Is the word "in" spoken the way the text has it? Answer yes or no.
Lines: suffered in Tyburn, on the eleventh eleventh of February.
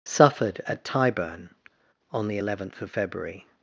no